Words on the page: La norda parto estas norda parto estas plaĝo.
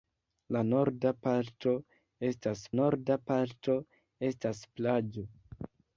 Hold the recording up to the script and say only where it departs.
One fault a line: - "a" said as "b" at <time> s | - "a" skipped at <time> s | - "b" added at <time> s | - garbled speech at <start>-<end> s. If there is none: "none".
none